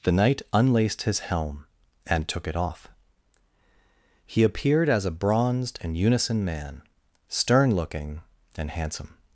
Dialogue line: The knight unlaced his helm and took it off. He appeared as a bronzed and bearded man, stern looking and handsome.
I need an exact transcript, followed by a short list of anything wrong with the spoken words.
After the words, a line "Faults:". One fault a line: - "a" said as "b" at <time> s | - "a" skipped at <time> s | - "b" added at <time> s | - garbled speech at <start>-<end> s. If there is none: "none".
The knight unlaced his helm and took it off. He appeared as a bronzed and unison man, stern looking and handsome.
Faults:
- "bearded" said as "unison" at 6.0 s